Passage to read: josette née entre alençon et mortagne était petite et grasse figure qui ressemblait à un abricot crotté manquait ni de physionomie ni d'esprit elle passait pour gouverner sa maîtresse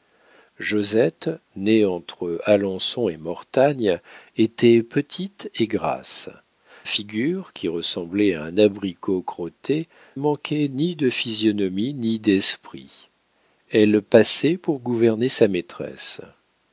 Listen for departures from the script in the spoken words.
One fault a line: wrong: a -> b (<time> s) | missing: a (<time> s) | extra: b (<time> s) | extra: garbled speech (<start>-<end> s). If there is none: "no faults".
no faults